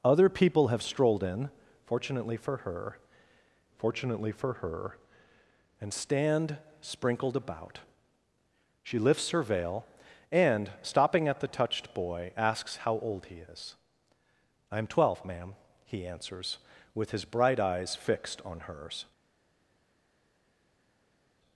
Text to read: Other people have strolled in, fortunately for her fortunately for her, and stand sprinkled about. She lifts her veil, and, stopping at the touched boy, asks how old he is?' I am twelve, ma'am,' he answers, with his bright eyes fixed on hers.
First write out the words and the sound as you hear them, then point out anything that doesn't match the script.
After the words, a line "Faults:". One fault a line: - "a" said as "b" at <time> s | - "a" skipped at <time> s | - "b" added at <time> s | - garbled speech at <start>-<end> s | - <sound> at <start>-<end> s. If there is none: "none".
Other people have strolled in, fortunately for her fortunately for her, and stand sprinkled about. She lifts her veil, and, stopping at the touched boy, asks how old he is?' I am twelve, ma'am,' he answers, with his bright eyes fixed on hers.
Faults:
none